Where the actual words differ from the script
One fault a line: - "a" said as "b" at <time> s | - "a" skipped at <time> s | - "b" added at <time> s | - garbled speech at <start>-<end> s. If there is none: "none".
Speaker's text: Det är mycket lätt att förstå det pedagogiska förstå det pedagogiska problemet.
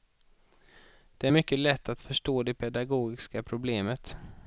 - "förstå det pedagogiska" skipped at 3.4 s